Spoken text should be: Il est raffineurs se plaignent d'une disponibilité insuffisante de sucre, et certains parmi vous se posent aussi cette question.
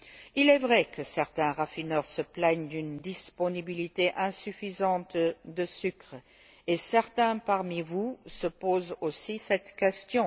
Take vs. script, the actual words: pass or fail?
fail